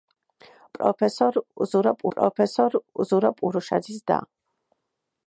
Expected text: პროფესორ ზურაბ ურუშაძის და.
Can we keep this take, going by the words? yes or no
no